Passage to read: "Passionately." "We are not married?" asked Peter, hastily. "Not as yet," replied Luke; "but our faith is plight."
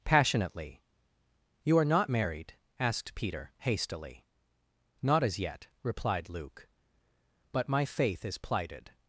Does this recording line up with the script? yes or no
no